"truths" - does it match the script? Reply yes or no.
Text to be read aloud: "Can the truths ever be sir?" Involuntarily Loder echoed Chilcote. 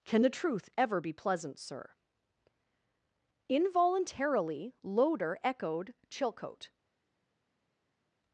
no